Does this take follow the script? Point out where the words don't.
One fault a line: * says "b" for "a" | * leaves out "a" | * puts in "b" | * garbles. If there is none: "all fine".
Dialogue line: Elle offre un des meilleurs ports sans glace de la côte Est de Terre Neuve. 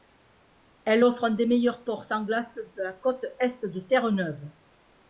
all fine